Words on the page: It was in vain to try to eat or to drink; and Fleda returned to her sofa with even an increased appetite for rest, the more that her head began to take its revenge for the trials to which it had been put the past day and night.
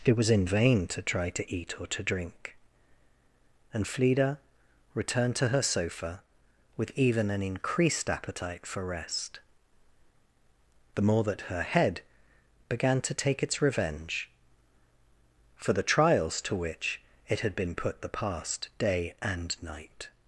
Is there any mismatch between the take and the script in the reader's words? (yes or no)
no